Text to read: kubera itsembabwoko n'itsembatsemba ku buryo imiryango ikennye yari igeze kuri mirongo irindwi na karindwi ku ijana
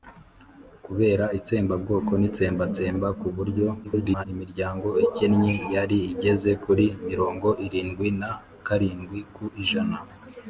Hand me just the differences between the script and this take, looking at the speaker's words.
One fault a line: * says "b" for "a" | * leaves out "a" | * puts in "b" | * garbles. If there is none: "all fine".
* garbles